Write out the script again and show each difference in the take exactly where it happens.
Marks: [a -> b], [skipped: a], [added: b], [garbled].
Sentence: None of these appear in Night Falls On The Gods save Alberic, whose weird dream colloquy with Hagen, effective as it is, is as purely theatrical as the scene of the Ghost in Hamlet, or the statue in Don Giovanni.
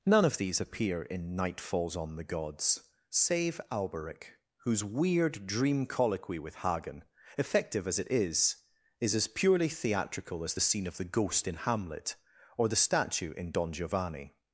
None of these appear in Night Falls On The Gods save Alberic, whose weird dream colloquy with Hagen, effective as it is, is as purely theatrical as the scene of the Ghost in Hamlet, or the statue in Don Giovanni.